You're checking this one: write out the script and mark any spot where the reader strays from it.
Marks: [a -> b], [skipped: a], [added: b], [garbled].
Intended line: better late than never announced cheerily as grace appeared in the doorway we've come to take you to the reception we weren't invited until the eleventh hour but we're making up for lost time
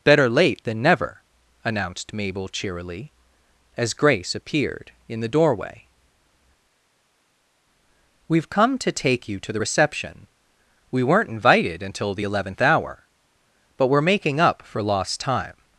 better late than never announced [added: mabel] cheerily as grace appeared in the doorway we've come to take you to the reception we weren't invited until the eleventh hour but we're making up for lost time